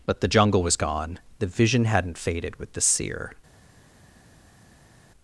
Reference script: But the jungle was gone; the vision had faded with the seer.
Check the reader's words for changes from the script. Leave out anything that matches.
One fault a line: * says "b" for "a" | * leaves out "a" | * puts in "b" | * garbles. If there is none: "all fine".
* says "hadn't" for "had"